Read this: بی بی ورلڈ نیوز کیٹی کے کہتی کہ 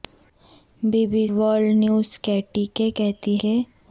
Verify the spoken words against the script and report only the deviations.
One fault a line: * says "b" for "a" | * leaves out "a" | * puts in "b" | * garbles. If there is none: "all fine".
all fine